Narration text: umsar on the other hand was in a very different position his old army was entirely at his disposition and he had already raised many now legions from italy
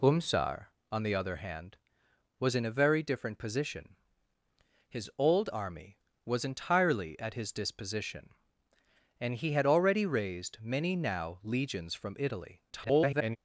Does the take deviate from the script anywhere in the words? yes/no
yes